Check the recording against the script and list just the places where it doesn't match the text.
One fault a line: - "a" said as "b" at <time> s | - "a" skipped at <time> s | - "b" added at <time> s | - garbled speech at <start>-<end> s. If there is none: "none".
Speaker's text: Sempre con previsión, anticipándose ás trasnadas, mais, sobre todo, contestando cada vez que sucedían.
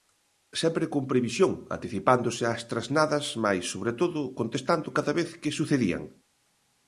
none